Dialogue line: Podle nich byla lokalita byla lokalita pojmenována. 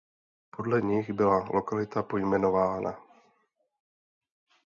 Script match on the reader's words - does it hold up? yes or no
no